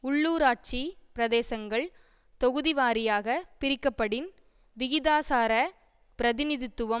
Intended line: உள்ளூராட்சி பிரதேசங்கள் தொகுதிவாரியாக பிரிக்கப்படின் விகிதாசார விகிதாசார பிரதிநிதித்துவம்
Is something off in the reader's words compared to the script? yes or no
yes